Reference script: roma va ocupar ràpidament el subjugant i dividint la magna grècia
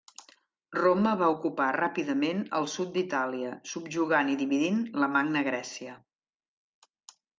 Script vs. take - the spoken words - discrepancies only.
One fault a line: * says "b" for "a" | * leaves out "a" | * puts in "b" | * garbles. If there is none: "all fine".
* puts in "sud d'itàlia"